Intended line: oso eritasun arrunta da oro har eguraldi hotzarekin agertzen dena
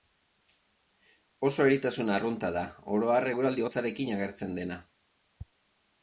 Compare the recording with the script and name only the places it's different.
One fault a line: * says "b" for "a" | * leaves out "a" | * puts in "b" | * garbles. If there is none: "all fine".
all fine